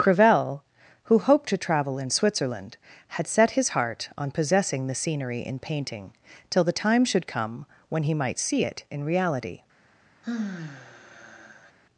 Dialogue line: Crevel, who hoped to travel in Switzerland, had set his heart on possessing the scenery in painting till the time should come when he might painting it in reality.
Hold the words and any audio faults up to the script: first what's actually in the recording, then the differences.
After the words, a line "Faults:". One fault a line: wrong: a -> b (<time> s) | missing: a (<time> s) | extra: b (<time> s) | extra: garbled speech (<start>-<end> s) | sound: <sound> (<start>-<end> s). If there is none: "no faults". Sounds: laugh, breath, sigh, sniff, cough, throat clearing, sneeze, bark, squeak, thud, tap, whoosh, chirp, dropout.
Crevel, who hoped to travel in Switzerland, had set his heart on possessing the scenery in painting till the time should come when he might see it in reality.
Faults:
wrong: painting -> see (8.4 s)
sound: sigh (10.2-11.7 s)